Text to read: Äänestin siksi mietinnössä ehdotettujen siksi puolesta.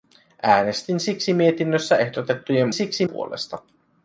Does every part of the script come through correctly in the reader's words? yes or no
yes